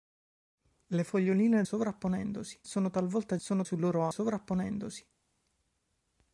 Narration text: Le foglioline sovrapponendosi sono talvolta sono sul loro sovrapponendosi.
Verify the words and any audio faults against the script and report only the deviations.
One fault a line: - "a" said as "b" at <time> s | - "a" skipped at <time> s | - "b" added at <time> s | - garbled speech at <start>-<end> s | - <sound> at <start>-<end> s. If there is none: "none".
none